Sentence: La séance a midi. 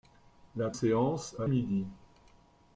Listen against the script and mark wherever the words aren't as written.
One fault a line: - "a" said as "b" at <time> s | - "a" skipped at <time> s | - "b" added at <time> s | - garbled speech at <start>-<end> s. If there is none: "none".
none